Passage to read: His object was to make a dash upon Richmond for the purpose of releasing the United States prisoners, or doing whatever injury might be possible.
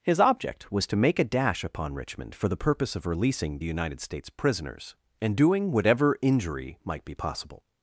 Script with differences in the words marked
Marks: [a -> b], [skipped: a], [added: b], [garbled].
His object was to make a dash upon Richmond for the purpose of releasing the United States prisoners, [or -> and] doing whatever injury might be possible.